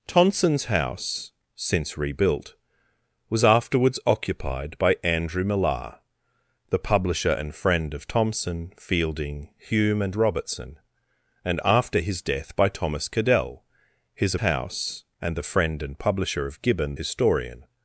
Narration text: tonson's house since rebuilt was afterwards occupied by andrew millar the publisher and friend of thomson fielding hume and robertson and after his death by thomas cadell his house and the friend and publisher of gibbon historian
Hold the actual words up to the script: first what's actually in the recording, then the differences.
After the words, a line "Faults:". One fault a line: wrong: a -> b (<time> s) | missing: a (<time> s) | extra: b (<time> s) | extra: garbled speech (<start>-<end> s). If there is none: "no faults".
tonson's house since rebuilt was afterwards occupied by andrew millar the publisher and friend of thomson fielding hume and robertson and after his death by thomas cadell his house and the friend and publisher of gibbon historian
Faults:
no faults